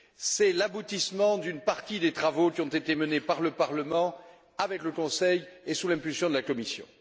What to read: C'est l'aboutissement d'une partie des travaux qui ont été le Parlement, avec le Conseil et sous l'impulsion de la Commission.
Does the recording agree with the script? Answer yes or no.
no